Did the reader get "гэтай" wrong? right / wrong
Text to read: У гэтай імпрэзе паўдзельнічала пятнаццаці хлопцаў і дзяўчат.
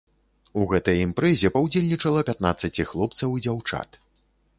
right